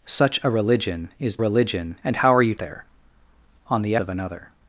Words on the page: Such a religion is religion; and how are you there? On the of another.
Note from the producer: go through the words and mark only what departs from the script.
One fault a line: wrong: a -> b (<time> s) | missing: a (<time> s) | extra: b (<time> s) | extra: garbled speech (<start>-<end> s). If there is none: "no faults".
no faults